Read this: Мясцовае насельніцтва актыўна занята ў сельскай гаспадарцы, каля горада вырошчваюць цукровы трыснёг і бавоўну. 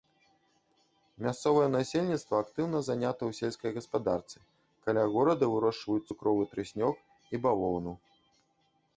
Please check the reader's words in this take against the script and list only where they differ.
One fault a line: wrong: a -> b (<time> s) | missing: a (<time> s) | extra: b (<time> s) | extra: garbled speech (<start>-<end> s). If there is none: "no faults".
no faults